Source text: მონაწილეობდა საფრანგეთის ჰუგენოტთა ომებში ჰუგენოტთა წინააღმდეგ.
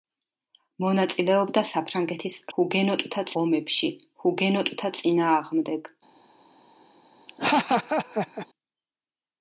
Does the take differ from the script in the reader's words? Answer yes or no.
no